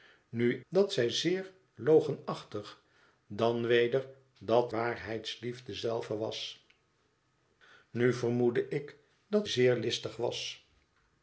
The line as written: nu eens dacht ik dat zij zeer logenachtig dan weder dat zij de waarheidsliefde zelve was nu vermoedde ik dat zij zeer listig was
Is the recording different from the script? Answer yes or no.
yes